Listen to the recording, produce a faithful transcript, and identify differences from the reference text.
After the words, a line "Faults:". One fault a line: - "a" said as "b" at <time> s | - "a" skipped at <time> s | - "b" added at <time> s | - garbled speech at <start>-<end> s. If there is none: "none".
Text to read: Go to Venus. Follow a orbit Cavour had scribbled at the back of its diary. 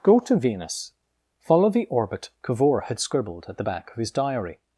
Go to Venus. Follow the orbit Cavour had scribbled at the back of his diary.
Faults:
- "a" said as "the" at 1.7 s
- "its" said as "his" at 4.0 s